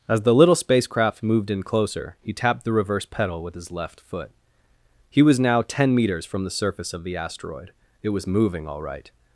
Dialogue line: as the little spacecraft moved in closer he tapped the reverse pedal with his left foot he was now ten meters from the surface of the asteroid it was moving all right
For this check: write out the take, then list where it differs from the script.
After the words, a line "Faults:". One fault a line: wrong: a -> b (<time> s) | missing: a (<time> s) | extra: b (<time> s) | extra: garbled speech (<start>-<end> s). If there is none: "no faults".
as the little spacecraft moved in closer he tapped the reverse pedal with his left foot he was now ten meters from the surface of the asteroid it was moving all right
Faults:
no faults